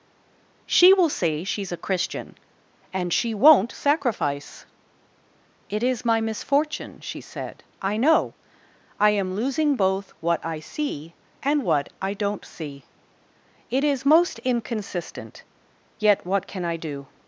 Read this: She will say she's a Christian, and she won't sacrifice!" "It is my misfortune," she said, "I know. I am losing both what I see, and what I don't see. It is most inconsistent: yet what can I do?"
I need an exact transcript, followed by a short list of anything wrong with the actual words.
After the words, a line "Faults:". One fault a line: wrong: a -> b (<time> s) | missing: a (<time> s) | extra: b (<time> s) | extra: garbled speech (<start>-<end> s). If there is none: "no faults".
She will say she's a Christian, and she won't sacrifice!" "It is my misfortune," she said, "I know. I am losing both what I see, and what I don't see. It is most inconsistent: yet what can I do?"
Faults:
no faults